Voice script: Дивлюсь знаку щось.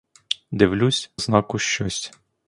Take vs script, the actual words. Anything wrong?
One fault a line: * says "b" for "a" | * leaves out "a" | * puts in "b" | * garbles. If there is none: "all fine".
all fine